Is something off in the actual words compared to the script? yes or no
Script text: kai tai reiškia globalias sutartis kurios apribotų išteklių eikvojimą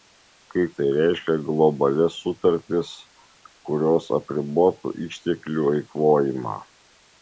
no